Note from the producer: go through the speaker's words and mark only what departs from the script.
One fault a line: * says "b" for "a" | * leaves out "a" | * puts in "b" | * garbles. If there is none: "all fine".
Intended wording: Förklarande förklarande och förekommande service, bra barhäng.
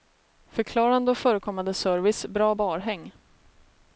* leaves out "förklarande"